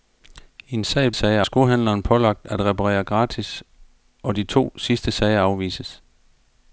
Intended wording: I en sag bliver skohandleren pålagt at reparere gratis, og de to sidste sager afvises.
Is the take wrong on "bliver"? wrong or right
wrong